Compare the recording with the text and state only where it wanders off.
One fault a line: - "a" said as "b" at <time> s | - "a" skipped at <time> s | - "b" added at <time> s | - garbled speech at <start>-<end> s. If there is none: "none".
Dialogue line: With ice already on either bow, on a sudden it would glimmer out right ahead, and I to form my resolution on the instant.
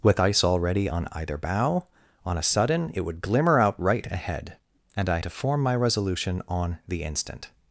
none